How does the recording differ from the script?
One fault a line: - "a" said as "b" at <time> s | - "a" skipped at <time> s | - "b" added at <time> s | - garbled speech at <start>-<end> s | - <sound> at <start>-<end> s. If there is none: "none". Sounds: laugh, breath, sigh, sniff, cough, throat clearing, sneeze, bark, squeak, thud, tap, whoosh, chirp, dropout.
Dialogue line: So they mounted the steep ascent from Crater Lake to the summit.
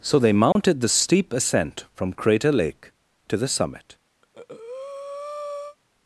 - dropout at 0.5-0.6 s
- breath at 4.2-5.8 s